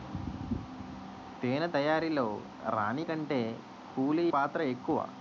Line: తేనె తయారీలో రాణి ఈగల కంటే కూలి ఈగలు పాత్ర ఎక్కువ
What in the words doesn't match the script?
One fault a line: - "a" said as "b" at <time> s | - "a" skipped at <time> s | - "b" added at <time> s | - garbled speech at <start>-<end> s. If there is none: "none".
- "ఈగల" skipped at 3.0 s
- "ఈగలు" skipped at 4.2 s